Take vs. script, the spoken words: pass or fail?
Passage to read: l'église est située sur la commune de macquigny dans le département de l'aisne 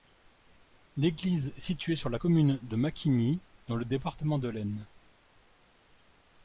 pass